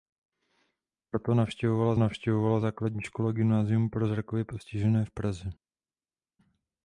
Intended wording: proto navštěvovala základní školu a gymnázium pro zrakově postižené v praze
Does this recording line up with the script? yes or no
no